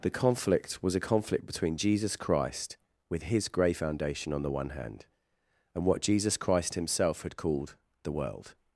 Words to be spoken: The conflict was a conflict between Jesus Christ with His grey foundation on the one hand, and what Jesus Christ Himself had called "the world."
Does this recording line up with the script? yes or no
yes